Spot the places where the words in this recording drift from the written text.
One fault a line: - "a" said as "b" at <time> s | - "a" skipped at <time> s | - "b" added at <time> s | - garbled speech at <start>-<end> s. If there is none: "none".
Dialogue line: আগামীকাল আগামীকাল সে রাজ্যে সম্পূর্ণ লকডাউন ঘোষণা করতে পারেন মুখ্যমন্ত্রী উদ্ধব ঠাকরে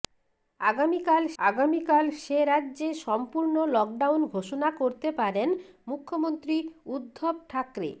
none